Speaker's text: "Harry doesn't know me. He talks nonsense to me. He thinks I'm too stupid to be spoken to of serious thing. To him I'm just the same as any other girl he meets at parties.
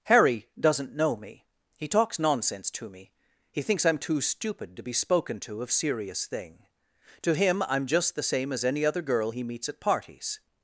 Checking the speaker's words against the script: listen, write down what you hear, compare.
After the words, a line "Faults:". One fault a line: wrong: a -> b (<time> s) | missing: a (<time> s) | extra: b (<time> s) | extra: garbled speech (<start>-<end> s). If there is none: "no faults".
"Harry doesn't know me. He talks nonsense to me. He thinks I'm too stupid to be spoken to of serious thing. To him I'm just the same as any other girl he meets at parties.
Faults:
no faults